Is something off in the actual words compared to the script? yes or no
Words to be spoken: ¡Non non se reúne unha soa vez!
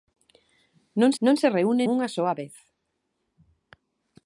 no